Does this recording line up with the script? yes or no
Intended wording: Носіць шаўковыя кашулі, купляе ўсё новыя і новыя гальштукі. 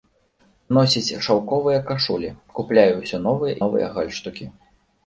no